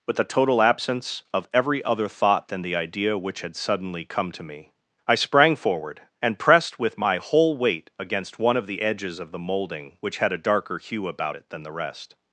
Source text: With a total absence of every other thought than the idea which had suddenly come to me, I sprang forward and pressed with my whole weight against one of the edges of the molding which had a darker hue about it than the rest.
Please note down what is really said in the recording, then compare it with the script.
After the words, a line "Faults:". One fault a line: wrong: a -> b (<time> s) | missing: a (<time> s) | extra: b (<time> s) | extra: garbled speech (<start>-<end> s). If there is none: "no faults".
With a total absence of every other thought than the idea which had suddenly come to me, I sprang forward and pressed with my whole weight against one of the edges of the molding which had a darker hue about it than the rest.
Faults:
no faults